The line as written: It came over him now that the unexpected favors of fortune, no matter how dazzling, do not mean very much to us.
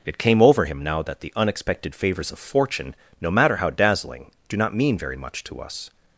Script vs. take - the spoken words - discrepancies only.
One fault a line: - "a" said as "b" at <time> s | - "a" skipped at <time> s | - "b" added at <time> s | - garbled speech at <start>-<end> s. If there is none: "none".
none